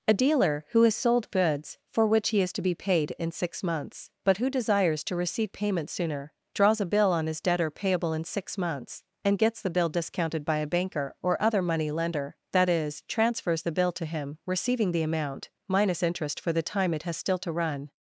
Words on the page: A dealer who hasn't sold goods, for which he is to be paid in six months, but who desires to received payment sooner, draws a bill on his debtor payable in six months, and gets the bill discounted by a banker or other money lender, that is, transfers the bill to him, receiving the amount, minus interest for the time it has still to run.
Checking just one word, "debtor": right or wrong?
right